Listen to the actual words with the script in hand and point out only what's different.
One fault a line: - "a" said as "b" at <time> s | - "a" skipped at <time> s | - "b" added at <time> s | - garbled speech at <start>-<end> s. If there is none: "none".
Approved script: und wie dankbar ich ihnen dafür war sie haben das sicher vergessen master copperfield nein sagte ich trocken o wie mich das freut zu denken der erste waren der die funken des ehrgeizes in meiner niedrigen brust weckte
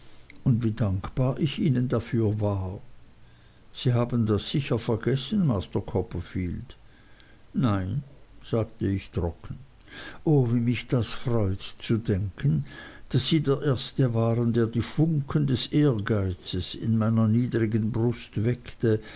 - "daß sie" added at 13.1 s